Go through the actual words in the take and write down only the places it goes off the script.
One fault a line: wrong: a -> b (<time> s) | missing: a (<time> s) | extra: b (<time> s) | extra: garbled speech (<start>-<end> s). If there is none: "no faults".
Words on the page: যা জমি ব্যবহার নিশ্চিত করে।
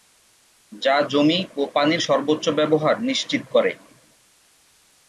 extra: ও পানির সর্বোচ্চ (1.6 s)